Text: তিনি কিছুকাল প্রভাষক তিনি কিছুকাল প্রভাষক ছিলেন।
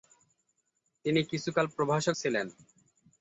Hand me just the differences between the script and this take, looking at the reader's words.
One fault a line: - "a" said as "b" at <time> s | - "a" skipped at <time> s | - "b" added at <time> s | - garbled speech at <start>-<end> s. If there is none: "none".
- "তিনি কিছুকাল প্রভাষক" skipped at 2.1 s